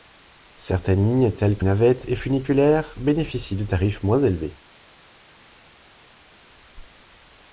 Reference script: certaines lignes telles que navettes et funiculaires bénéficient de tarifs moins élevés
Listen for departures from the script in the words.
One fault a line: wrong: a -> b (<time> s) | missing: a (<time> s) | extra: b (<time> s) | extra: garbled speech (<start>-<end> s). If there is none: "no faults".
no faults